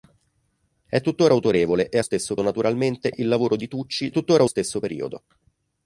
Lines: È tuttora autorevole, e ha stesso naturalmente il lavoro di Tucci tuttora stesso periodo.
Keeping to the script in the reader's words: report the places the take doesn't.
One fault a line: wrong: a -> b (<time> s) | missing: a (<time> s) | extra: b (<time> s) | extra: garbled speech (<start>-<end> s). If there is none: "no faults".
no faults